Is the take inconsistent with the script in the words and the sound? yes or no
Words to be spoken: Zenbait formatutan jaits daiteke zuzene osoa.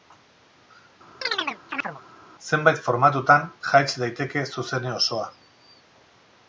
yes